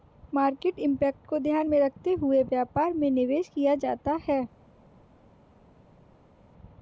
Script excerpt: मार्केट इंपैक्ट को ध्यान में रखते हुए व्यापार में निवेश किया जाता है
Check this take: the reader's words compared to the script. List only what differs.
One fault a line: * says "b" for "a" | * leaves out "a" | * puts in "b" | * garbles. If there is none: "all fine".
all fine